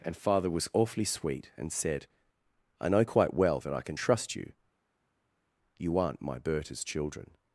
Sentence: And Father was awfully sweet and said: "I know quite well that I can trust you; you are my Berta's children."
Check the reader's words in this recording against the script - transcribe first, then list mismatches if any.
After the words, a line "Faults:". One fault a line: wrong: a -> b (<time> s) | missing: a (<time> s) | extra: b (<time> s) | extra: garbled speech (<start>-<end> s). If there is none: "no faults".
And Father was awfully sweet and said: "I know quite well that I can trust you; you aren't my Berta's children."
Faults:
wrong: are -> aren't (6.0 s)